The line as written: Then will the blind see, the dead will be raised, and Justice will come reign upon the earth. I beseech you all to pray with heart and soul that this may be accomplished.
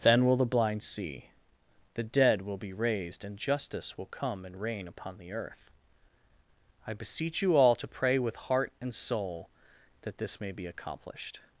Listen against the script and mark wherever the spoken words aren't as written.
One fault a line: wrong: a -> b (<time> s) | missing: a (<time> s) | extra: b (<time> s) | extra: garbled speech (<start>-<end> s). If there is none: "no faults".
extra: and (4.5 s)